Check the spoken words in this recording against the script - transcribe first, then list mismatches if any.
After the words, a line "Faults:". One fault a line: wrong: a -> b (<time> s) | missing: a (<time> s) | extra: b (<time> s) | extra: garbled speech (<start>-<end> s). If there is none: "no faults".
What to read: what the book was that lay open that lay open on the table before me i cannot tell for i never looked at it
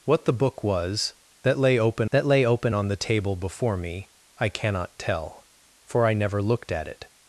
what the book was that lay open that lay open on the table before me i cannot tell for i never looked at it
Faults:
no faults